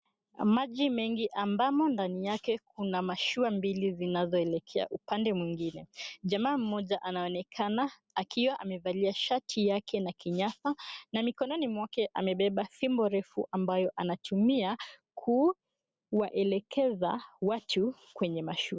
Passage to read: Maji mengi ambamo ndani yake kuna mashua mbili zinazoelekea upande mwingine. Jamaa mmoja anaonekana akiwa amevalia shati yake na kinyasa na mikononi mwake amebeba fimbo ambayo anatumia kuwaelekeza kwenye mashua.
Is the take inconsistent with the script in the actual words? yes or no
yes